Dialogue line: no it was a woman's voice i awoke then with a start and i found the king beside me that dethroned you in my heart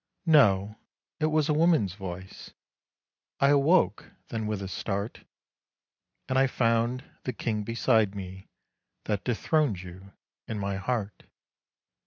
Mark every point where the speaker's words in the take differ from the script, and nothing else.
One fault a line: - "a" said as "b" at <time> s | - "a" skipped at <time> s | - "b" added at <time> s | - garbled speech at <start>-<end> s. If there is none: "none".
none